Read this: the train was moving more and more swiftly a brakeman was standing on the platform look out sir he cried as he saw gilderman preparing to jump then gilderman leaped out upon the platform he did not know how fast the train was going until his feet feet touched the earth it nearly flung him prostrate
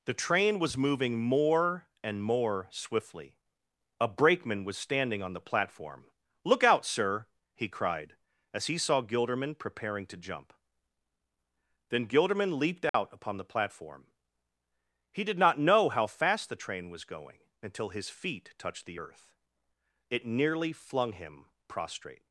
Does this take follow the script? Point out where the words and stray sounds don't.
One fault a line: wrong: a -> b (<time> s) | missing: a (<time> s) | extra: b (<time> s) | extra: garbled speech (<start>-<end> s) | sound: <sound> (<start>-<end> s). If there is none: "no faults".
sound: dropout (12.9-12.9 s)
missing: feet (18.5 s)